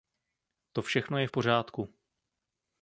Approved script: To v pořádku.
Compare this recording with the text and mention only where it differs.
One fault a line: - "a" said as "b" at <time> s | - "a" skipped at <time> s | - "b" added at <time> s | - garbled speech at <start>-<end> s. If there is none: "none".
- "všechno je" added at 0.8 s